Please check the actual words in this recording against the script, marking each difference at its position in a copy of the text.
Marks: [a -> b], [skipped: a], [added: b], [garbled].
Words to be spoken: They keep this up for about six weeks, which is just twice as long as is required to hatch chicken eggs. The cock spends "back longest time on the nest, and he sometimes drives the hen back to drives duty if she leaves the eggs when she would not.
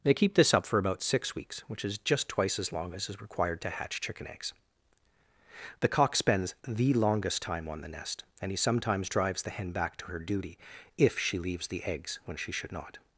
They keep this up for about six weeks, which is just twice as long as is required to hatch chicken eggs. The cock spends ["back -> the] longest time on the nest, and he sometimes drives the hen back to [drives -> her] duty if she leaves the eggs when she [would -> should] not.